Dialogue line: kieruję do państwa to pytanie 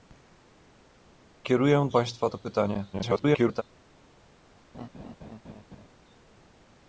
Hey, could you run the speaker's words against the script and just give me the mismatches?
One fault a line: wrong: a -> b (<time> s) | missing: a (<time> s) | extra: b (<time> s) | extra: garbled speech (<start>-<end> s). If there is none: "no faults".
missing: do (1.9 s)
extra: garbled speech (2.9-3.6 s)